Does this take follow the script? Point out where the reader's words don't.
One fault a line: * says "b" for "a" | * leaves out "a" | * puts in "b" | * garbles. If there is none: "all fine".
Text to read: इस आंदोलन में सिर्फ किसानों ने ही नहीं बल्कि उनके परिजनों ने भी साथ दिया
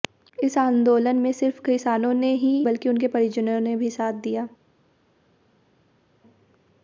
* leaves out "नहीं"